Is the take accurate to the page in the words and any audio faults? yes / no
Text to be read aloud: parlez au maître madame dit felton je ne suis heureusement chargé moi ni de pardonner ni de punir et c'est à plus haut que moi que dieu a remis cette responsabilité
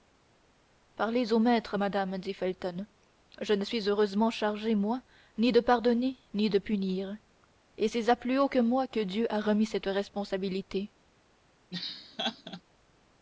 no